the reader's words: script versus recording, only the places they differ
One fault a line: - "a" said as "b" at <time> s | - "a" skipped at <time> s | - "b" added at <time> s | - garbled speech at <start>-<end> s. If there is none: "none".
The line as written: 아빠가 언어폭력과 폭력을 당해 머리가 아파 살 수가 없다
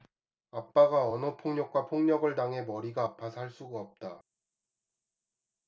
none